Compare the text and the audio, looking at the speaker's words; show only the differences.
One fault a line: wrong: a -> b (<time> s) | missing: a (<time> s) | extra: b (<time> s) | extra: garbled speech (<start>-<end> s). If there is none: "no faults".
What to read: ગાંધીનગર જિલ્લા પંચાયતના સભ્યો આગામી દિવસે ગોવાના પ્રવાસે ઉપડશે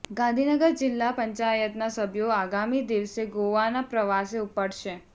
no faults